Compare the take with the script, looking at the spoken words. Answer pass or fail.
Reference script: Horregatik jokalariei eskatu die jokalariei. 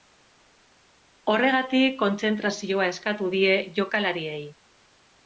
fail